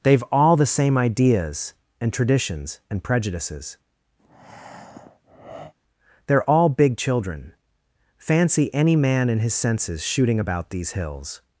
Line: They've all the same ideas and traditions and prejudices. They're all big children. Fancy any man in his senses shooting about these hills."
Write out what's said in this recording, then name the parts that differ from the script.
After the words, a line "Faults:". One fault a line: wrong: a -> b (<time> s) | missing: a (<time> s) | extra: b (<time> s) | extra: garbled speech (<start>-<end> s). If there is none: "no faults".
They've all the same ideas and traditions and prejudices. They're all big children. Fancy any man in his senses shooting about these hills."
Faults:
no faults